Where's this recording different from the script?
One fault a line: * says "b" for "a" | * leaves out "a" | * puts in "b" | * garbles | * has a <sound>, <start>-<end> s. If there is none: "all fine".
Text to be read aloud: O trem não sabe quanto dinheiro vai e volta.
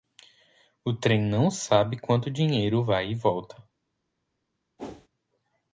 * has a whoosh, 4.8-5.1 s